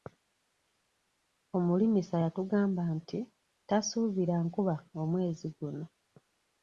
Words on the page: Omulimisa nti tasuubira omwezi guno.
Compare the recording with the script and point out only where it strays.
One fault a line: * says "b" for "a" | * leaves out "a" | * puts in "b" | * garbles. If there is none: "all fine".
* puts in "yatugamba"
* puts in "nkuba"